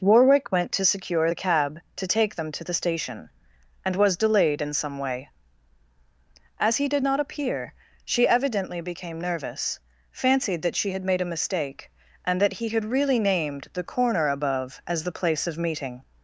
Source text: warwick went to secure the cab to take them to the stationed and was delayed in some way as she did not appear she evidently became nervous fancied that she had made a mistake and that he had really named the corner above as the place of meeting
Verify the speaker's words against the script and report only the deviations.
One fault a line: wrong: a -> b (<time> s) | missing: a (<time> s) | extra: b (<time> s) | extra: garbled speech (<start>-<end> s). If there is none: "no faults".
wrong: stationed -> station (2.7 s)
wrong: she -> he (6.8 s)